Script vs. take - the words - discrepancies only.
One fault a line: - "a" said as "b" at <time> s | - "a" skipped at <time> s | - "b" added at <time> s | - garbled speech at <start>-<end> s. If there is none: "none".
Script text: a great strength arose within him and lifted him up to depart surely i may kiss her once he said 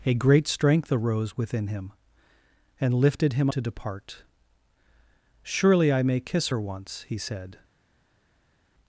- "up" skipped at 3.5 s